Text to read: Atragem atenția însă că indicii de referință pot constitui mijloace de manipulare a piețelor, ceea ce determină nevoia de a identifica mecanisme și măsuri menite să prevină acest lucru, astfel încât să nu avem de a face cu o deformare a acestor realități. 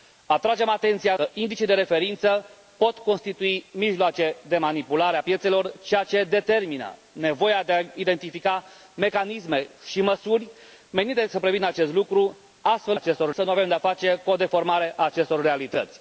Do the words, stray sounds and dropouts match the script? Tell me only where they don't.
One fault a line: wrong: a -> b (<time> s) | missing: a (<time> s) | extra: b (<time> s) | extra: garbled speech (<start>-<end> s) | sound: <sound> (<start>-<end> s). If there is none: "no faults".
missing: însă (1.1 s)
wrong: încât -> acestor (12.9 s)